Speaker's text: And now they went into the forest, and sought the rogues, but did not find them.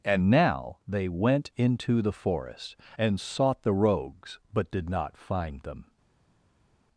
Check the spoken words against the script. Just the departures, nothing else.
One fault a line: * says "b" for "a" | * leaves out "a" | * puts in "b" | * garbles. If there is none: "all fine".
all fine